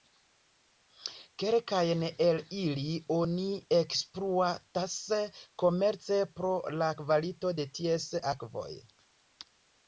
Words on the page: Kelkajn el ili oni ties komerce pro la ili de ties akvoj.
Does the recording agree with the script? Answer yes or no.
no